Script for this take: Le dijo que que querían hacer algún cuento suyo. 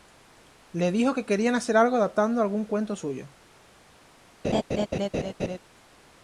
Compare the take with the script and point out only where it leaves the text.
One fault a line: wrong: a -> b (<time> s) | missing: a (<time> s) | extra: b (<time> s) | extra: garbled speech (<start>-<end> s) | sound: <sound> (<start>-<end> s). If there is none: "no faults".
missing: que (1.3 s)
extra: algo adaptando (1.8 s)
sound: laugh (4.4-5.6 s)